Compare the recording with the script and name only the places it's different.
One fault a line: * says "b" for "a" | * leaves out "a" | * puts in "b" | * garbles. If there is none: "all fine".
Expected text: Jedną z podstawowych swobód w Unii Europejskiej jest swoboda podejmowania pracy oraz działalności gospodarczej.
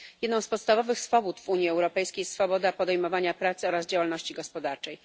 all fine